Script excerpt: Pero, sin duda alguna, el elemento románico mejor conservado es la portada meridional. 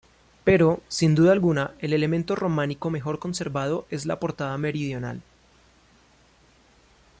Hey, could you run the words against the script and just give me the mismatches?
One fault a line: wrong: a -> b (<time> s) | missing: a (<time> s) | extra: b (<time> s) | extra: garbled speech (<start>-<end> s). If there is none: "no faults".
no faults